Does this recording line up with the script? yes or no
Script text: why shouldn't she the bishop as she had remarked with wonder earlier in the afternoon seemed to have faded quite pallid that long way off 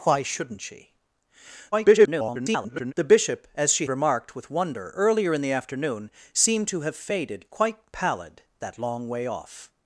no